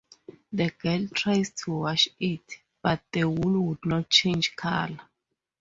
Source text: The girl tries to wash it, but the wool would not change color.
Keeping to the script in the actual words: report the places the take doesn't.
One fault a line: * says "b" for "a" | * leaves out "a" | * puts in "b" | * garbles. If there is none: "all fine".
all fine